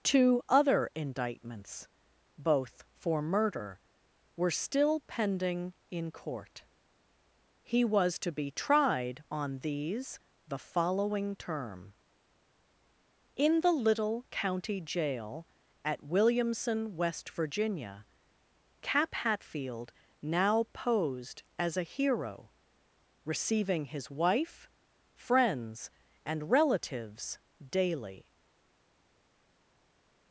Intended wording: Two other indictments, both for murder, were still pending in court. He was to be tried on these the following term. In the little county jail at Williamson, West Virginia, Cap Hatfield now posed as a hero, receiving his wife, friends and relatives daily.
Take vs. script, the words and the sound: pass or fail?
pass